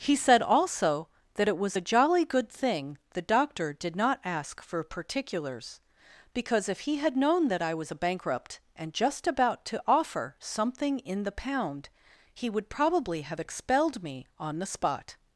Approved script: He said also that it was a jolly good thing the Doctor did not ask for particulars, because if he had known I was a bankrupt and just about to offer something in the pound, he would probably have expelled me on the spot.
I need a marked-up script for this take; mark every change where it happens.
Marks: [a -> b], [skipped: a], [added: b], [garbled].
He said also that it was a jolly good thing the Doctor did not ask for particulars, because if he had known [added: that] I was a bankrupt and just about to offer something in the pound, he would probably have expelled me on the spot.